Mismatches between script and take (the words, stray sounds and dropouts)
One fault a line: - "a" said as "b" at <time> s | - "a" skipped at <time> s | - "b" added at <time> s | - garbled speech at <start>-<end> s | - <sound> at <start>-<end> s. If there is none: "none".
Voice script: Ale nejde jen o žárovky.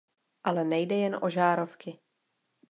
none